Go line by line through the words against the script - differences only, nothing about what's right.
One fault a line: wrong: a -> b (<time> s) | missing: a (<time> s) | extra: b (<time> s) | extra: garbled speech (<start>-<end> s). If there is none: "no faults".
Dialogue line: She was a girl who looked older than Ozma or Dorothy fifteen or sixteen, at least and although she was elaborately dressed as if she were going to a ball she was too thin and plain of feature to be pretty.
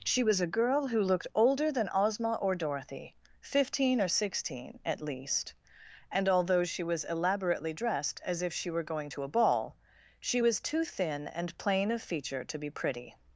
no faults